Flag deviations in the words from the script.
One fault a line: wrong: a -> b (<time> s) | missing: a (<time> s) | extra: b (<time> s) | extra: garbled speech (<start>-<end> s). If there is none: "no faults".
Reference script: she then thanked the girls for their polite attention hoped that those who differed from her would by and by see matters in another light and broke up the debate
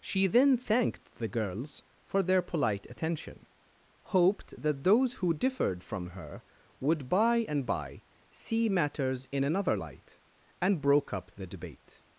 no faults